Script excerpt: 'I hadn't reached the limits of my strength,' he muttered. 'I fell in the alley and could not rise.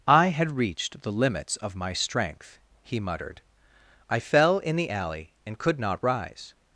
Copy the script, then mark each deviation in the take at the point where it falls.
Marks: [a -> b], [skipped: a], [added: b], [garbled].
'I [hadn't -> had] reached the limits of my strength,' he muttered. 'I fell in the alley and could not rise.